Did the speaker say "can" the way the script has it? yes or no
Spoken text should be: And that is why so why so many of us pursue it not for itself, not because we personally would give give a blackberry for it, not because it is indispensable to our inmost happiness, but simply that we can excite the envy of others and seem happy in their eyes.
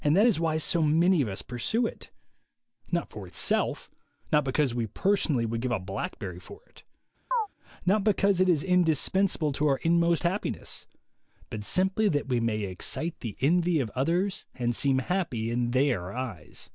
no